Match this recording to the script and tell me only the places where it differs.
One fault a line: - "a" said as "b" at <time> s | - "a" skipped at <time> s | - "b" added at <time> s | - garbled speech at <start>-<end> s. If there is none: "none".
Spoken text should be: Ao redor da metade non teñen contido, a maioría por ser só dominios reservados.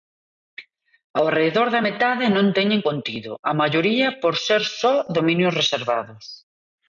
none